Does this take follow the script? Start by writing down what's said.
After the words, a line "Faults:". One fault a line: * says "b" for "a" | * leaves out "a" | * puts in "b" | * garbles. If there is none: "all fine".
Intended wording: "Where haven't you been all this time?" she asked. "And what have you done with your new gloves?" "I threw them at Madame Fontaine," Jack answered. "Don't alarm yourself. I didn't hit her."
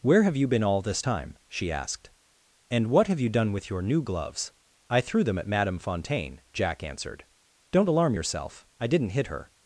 "Where have you been all this time?" she asked. "And what have you done with your new gloves?" "I threw them at Madame Fontaine," Jack answered. "Don't alarm yourself. I didn't hit her."
Faults:
* says "have" for "haven't"